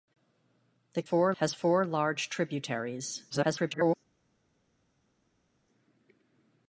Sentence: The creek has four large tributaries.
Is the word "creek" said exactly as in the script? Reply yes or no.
no